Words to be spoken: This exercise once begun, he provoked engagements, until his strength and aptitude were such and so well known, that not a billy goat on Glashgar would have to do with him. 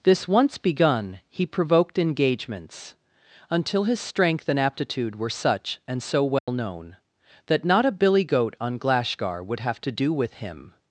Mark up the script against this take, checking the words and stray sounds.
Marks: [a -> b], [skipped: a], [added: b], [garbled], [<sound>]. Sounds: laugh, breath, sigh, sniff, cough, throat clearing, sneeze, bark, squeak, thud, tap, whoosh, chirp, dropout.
This [skipped: exercise] once begun, he provoked engagements, until his strength and aptitude were such and so well [dropout] known, that not a billy goat on Glashgar would have to do with him.